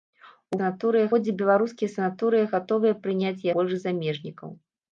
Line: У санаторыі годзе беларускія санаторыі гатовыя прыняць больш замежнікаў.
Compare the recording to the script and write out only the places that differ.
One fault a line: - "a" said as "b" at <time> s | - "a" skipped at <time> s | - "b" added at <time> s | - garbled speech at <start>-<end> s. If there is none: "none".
none